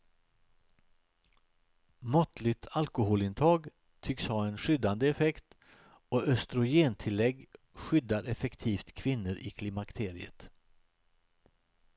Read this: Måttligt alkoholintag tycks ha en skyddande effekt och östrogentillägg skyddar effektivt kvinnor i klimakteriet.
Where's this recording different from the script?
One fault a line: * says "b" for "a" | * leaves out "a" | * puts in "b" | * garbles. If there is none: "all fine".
all fine